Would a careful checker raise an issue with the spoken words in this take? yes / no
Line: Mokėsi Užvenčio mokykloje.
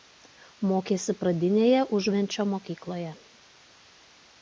yes